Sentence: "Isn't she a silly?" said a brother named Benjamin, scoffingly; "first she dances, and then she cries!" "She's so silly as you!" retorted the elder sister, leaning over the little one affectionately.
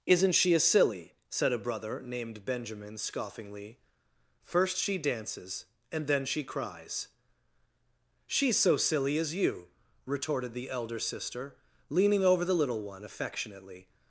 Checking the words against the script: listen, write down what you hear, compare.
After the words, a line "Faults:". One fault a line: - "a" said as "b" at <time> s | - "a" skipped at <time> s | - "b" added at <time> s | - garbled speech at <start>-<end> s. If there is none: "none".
"Isn't she a silly?" said a brother named Benjamin, scoffingly; "first she dances, and then she cries!" "She's so silly as you!" retorted the elder sister, leaning over the little one affectionately.
Faults:
none